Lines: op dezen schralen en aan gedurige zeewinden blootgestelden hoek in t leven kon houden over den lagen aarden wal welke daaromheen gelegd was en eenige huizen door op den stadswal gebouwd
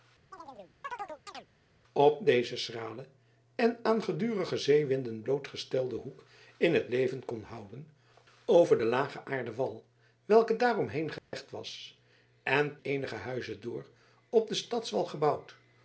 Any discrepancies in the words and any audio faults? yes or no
yes